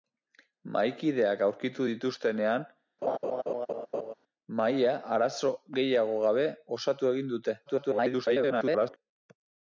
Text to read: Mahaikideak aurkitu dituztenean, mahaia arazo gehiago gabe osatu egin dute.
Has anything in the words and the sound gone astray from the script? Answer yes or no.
yes